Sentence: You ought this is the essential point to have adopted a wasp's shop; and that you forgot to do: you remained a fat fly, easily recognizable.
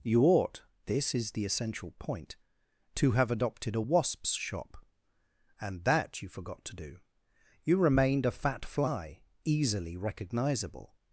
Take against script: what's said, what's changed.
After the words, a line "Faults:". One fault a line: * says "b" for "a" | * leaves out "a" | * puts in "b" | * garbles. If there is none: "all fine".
You ought this is the essential point to have adopted a wasp's shop; and that you forgot to do: you remained a fat fly, easily recognizable.
Faults:
all fine